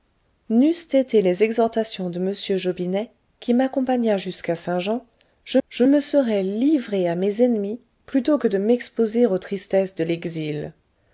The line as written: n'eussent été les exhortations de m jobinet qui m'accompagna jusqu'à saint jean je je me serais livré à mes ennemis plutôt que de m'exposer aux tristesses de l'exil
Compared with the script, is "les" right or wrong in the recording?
right